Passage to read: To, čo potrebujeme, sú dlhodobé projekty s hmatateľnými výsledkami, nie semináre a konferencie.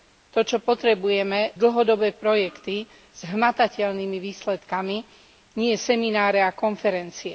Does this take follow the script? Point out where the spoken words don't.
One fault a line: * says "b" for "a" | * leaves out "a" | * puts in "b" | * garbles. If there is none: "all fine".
* leaves out "sú"